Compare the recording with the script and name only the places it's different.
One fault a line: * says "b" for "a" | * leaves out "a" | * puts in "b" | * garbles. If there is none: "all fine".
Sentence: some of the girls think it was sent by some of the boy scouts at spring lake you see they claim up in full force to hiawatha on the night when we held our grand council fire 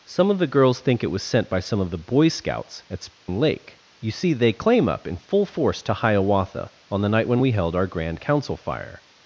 all fine